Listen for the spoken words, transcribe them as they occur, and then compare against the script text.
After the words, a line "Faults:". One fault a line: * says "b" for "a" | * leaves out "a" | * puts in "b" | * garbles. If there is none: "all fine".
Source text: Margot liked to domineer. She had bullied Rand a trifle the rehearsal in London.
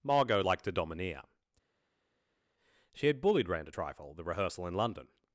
Margot liked to domineer. She had bullied Rand a trifle the rehearsal in London.
Faults:
all fine